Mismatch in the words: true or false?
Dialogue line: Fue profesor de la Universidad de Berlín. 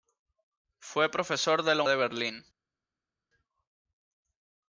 true